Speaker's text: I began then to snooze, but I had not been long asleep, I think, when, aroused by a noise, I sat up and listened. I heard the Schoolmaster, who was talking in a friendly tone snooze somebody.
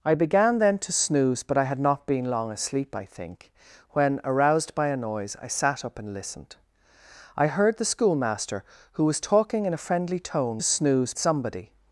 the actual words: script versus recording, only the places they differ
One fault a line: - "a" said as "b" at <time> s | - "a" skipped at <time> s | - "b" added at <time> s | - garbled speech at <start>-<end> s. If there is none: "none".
none